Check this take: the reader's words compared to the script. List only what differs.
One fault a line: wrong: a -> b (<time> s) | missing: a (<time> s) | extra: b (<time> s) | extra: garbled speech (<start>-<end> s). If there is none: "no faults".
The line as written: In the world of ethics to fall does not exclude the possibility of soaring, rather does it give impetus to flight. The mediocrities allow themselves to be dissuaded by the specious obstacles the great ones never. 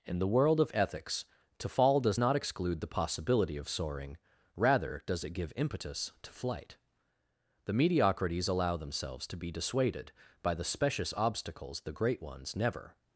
no faults